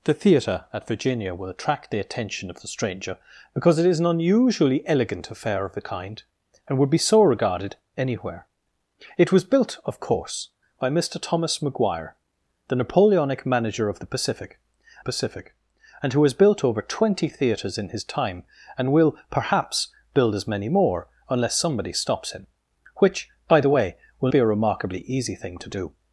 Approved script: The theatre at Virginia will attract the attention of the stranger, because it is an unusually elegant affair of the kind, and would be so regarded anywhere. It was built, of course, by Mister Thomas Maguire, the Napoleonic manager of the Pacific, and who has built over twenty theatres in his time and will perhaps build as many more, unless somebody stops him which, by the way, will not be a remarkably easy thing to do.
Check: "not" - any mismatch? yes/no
yes